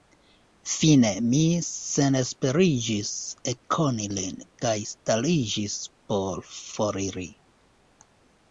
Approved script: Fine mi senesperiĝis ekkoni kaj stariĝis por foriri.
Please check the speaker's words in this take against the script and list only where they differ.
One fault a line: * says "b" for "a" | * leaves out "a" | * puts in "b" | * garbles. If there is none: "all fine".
* puts in "lin"